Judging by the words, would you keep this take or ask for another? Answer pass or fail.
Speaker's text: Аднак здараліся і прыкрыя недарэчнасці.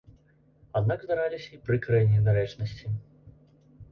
pass